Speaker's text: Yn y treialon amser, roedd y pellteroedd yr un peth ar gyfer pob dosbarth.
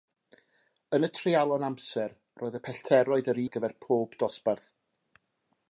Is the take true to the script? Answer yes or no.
no